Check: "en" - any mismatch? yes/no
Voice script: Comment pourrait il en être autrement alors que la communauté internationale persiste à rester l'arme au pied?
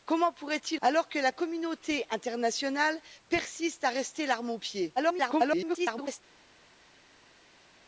yes